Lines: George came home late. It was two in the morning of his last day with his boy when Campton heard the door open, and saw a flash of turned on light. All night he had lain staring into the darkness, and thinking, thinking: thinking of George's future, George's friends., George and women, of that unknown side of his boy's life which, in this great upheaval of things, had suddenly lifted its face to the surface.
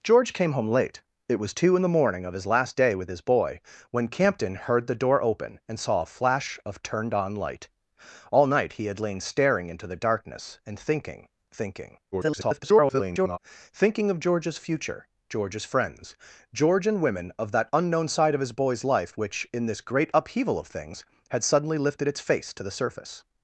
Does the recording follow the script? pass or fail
fail